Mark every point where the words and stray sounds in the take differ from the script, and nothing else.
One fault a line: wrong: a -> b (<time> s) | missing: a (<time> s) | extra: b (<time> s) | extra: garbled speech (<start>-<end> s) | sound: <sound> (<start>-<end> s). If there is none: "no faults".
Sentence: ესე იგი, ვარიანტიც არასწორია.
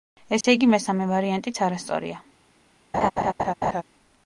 sound: dropout (0.4-0.4 s)
extra: მესამე (0.7 s)
sound: laugh (2.9-3.8 s)